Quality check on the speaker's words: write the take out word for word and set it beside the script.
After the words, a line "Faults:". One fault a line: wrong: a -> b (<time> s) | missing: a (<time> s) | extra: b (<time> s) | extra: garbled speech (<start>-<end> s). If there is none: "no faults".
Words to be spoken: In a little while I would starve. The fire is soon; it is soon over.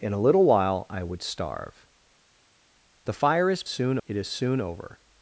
In a little while I would starve. The fire is soon; it is soon over.
Faults:
no faults